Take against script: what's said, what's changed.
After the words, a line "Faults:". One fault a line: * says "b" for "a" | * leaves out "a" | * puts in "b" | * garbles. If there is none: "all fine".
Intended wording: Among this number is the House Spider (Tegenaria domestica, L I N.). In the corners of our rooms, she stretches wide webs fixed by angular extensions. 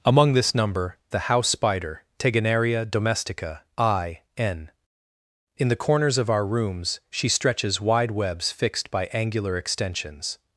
Among this number the House Spider (Tegenaria domestica, I N.). In the corners of our rooms, she stretches wide webs fixed by angular extensions.
Faults:
* leaves out "is"
* leaves out "L"